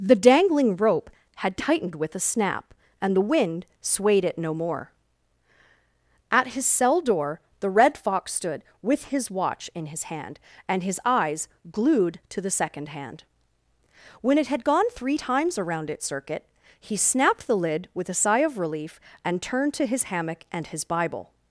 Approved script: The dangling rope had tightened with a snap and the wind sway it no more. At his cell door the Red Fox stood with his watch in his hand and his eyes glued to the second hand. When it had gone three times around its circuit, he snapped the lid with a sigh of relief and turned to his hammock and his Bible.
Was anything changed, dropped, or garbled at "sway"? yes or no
yes